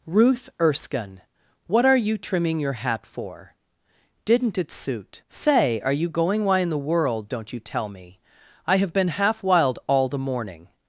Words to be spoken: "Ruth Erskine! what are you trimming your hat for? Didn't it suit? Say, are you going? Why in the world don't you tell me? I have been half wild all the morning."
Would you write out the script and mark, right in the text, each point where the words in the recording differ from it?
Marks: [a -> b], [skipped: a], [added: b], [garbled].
"Ruth Erskine! what are you trimming your hat for? Didn't it suit? Say, are you going? Why in the world don't you tell me? I have been half wild all the morning."